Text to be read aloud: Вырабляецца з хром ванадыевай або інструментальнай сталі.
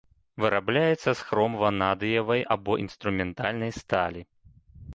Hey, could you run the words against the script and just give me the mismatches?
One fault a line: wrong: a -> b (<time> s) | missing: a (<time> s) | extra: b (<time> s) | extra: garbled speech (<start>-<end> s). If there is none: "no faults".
no faults